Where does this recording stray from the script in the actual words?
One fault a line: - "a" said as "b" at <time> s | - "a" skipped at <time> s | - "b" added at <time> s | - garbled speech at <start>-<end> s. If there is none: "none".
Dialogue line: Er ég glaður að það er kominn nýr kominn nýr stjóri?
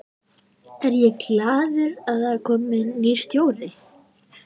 - "kominn nýr" skipped at 3.2 s